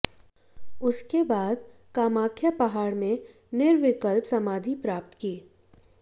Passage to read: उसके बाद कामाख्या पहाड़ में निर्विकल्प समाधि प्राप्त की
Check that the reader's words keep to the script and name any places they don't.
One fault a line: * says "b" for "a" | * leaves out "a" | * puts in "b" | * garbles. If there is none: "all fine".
all fine